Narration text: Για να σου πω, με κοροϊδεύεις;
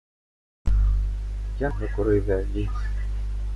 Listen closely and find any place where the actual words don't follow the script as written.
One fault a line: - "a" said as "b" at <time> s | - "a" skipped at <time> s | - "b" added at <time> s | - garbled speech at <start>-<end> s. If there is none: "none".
- "να σου πω" skipped at 1.7 s